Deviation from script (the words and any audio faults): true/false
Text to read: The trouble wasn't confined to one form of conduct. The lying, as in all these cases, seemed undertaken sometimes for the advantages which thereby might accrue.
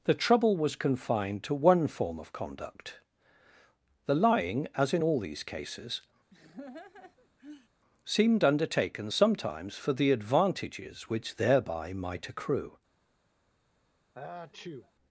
true